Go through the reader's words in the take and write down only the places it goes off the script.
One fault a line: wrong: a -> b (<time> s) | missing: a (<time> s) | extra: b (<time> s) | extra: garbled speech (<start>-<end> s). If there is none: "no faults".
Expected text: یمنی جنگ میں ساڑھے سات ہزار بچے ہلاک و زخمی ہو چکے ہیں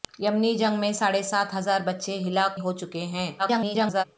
missing: و زخمی (2.6 s)
extra: garbled speech (3.4-4.0 s)